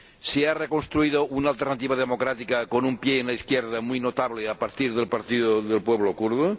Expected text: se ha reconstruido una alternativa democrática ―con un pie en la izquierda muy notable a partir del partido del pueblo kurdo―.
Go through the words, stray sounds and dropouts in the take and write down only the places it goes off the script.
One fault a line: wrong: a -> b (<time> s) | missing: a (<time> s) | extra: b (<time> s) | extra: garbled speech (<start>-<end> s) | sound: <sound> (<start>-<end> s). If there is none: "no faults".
no faults